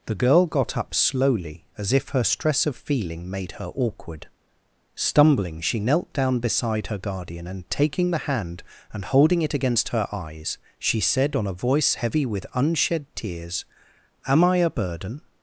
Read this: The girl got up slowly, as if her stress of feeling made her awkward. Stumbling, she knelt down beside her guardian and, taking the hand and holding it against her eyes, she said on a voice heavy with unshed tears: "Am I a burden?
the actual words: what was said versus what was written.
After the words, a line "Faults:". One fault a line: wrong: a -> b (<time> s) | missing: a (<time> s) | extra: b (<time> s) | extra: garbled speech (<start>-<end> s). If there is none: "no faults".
The girl got up slowly, as if her stress of feeling made her awkward. Stumbling, she knelt down beside her guardian and, taking the hand and holding it against her eyes, she said on a voice heavy with unshed tears: "Am I a burden?
Faults:
no faults